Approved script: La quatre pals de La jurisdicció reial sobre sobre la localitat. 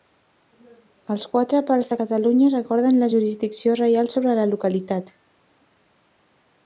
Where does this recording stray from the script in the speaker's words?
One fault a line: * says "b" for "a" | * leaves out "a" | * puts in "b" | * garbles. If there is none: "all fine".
* says "Els" for "La"
* puts in "Catalunya recorden"
* leaves out "sobre"